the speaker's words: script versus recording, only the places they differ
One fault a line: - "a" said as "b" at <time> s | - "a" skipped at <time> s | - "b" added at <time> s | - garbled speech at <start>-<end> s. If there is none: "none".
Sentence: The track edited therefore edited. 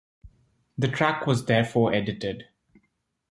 - "edited" said as "was" at 1.3 s